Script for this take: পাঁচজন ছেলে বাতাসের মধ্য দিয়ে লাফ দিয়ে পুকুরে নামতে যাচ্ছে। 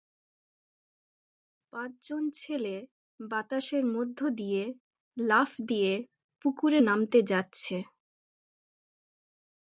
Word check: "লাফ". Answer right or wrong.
right